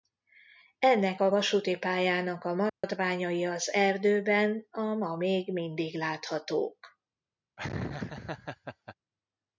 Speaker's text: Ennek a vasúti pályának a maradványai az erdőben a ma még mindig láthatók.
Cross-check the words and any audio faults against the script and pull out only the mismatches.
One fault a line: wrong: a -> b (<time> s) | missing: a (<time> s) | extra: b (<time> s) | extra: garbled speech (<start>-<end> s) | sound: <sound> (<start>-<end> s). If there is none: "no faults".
sound: dropout (2.7-2.8 s)
sound: laugh (7.6-8.9 s)